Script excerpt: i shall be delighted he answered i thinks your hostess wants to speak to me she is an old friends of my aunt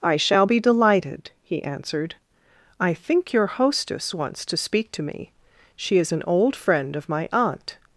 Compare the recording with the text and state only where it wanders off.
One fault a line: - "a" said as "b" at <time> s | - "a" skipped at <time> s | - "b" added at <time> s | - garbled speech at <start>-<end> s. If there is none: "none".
- "thinks" said as "think" at 2.9 s
- "friends" said as "friend" at 6.6 s